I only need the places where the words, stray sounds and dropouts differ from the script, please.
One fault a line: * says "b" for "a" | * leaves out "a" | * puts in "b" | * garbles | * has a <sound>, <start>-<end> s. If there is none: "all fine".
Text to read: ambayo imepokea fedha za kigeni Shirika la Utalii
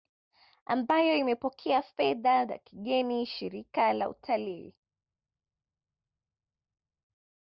all fine